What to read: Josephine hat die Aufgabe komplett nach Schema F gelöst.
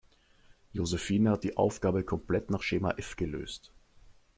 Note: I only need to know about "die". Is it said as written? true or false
true